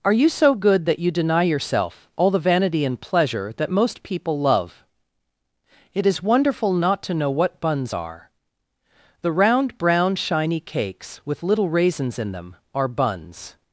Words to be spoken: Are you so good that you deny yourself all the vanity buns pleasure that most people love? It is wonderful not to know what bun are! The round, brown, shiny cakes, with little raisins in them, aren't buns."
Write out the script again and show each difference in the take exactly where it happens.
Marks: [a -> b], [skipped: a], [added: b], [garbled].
Are you so good that you deny yourself all the vanity [buns -> and] pleasure that most people love? It is wonderful not to know what [bun -> buns] are! The round, brown, shiny cakes, with little raisins in them, [aren't -> are] buns."